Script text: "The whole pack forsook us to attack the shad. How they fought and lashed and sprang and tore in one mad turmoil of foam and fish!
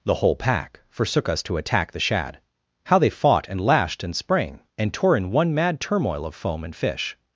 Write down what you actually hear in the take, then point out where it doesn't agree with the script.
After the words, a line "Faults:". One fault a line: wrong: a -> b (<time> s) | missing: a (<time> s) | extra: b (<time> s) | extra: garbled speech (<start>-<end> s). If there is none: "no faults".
"The whole pack forsook us to attack the shad. How they fought and lashed and sprang and tore in one mad turmoil of foam and fish!
Faults:
no faults